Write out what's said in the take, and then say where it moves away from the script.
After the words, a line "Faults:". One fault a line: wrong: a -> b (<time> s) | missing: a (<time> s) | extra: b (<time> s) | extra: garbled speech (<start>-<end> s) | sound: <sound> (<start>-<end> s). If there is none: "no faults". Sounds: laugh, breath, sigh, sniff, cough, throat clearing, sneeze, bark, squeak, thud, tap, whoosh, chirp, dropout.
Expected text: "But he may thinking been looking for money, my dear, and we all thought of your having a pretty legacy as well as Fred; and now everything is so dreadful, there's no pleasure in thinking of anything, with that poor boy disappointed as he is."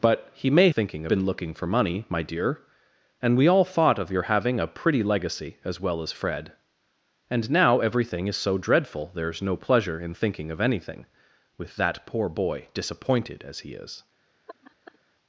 "But he may thinking been looking for money, my dear, and we all thought of your having a pretty legacy as well as Fred; and now everything is so dreadful, there's no pleasure in thinking of anything, with that poor boy disappointed as he is."
Faults:
sound: laugh (14.5-15.0 s)